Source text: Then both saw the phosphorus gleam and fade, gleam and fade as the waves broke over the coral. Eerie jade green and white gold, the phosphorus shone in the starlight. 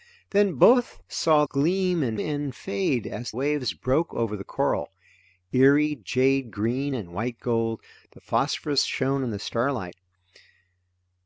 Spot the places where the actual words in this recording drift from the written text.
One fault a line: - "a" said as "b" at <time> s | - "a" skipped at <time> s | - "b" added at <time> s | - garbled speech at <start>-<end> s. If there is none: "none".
- "the phosphorus" skipped at 1.4 s
- "fade gleam" skipped at 2.2 s
- "the" skipped at 3.3 s